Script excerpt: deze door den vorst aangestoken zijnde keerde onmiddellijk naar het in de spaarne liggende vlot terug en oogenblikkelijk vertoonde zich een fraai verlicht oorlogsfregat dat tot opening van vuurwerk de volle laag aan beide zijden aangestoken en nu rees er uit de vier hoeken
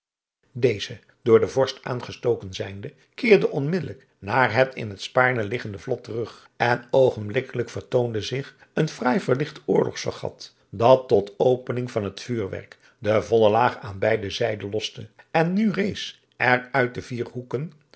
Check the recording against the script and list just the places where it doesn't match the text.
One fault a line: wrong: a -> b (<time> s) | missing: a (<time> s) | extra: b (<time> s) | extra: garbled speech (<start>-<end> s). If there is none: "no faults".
wrong: de -> het (4.9 s)
extra: het (12.0 s)
wrong: aangestoken -> loste (14.7 s)